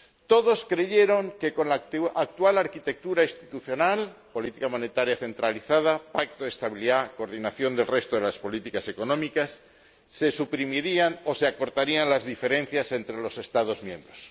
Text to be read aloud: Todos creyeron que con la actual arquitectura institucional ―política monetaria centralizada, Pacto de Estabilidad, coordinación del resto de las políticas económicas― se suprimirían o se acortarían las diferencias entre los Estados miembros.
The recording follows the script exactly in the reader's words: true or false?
true